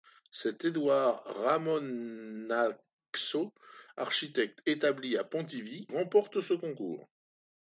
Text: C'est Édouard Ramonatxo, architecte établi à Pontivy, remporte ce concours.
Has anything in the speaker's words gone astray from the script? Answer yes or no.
no